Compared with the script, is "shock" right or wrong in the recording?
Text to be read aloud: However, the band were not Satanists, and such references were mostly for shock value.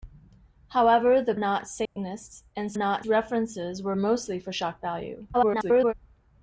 right